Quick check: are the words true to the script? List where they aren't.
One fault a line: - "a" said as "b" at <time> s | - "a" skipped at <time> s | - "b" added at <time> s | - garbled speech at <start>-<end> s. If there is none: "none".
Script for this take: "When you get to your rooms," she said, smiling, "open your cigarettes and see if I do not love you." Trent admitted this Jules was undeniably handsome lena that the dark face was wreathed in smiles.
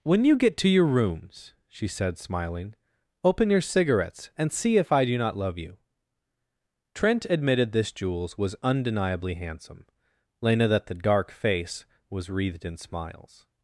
none